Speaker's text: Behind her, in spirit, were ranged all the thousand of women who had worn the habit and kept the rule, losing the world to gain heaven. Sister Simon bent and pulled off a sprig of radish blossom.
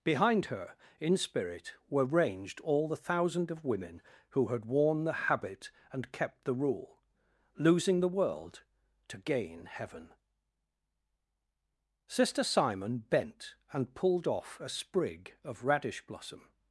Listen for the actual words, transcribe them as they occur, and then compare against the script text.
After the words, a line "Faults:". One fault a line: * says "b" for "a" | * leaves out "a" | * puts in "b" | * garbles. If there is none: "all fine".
Behind her, in spirit, were ranged all the thousand of women who had worn the habit and kept the rule, losing the world to gain heaven. Sister Simon bent and pulled off a sprig of radish blossom.
Faults:
all fine